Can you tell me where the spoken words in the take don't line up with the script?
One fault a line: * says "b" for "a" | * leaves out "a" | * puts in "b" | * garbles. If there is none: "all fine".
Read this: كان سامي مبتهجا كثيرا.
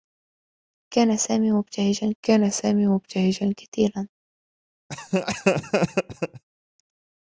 * puts in "كان سامي مبتهجا"